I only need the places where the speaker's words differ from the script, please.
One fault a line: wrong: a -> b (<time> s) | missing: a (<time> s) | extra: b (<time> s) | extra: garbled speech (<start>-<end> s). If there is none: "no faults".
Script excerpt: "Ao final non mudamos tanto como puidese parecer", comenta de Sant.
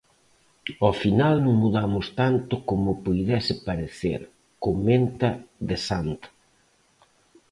no faults